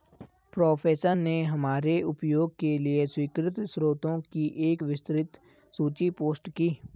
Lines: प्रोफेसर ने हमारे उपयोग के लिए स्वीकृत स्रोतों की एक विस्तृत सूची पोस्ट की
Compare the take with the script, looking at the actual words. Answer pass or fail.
pass